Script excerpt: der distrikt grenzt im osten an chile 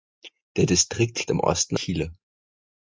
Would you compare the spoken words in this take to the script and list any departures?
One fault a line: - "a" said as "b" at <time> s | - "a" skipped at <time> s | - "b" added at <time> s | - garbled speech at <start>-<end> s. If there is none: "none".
- "grenzt" skipped at 1.3 s
- "an" skipped at 1.8 s